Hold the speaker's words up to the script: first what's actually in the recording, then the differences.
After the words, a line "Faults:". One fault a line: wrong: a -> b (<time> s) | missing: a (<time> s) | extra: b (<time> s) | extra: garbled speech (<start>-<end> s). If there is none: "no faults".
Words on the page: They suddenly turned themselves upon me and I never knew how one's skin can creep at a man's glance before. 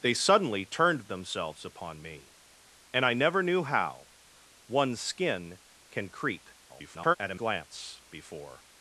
They suddenly turned themselves upon me and I never knew how one's skin can creep [garbled] at a glance before.
Faults:
extra: garbled speech (6.7-7.2 s)
missing: man's (7.4 s)